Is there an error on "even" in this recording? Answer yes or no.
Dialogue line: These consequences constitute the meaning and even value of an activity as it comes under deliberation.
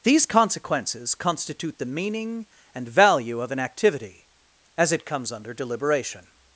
yes